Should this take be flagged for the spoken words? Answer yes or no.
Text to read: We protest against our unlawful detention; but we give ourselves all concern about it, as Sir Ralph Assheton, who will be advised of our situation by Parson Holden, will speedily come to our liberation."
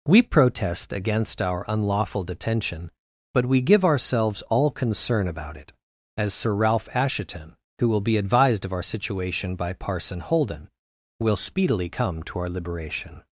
no